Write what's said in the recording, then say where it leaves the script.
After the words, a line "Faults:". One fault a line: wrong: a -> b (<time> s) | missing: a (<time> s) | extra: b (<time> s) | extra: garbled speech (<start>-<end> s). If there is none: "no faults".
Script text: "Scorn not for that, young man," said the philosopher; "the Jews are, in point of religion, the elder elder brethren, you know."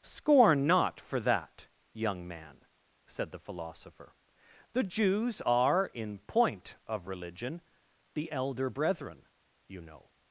"Scorn not for that, young man," said the philosopher; "the Jews are, in point of religion, the elder brethren, you know."
Faults:
missing: elder (8.7 s)